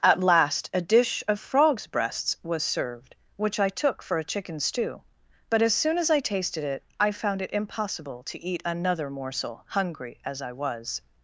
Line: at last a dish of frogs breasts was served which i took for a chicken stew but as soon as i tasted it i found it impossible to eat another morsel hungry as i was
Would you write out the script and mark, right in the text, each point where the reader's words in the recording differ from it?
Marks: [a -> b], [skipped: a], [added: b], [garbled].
at last a dish of frogs breasts was served which i took for a chicken stew but as soon as i tasted it i found it impossible to eat another morsel hungry as i was